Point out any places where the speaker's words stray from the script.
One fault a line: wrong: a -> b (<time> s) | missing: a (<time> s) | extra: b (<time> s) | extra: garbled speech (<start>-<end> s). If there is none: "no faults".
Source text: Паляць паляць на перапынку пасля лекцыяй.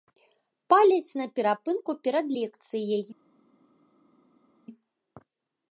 missing: паляць (1.2 s)
wrong: пасля -> перад (2.1 s)